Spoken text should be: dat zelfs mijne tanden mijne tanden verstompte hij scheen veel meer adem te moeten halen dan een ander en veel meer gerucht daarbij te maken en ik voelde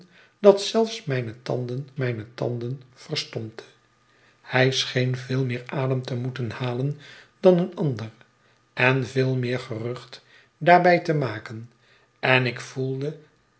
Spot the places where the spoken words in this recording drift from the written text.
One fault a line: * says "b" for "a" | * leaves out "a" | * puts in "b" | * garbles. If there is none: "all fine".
all fine